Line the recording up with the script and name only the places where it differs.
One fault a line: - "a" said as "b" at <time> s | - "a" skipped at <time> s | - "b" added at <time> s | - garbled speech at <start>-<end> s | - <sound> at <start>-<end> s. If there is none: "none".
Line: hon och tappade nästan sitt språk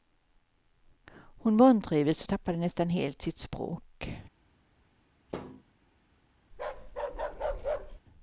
- "vantrivdes" added at 1.6 s
- "helt" added at 2.9 s
- thud at 5.3-5.6 s
- bark at 6.5-8.0 s